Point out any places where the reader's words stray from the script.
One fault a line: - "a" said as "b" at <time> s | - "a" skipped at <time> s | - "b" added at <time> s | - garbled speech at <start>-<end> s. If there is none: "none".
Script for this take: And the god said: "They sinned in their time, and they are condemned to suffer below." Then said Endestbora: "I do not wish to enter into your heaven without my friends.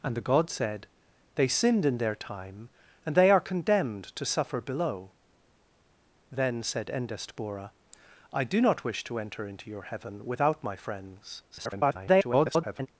- garbled speech at 11.5-12.9 s